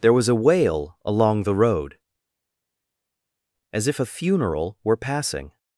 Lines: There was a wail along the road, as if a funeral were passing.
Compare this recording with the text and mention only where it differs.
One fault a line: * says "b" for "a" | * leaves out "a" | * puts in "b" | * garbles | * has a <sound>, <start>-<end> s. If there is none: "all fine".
all fine